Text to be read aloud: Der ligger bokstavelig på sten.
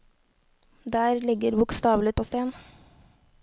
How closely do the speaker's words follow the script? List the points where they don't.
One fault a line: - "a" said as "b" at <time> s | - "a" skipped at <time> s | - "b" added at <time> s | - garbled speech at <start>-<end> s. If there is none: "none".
none